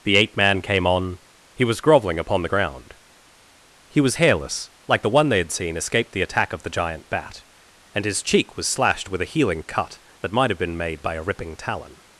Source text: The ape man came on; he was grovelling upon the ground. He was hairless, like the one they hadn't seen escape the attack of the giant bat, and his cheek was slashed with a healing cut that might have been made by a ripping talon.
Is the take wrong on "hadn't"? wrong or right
wrong